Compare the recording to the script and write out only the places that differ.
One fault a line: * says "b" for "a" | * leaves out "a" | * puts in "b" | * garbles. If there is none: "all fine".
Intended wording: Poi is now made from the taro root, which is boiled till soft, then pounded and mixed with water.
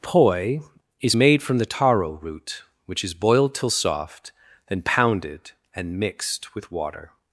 * leaves out "now"